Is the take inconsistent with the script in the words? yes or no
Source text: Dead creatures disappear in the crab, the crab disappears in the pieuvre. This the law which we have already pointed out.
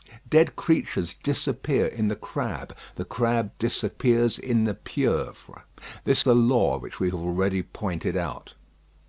no